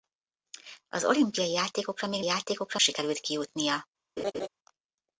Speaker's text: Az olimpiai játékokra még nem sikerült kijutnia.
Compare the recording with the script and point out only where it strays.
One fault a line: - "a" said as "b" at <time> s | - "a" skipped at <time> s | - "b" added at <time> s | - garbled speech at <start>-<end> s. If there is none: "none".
- "nem" said as "játékokra" at 2.2 s